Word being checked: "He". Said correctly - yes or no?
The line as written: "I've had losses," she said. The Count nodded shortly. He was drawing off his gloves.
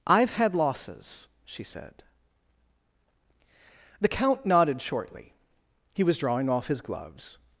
yes